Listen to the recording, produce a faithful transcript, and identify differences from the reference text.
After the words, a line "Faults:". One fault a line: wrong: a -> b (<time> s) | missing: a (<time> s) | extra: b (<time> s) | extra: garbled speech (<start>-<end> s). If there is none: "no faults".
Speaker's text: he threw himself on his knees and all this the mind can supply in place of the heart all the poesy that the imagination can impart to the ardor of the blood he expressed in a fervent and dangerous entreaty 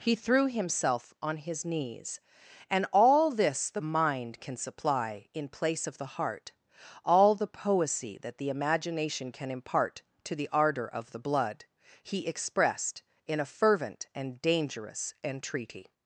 he threw himself on his knees and all this the mind can supply in place of the heart all the poesy that the imagination can impart to the ardor of the blood he expressed in a fervent and dangerous entreaty
Faults:
no faults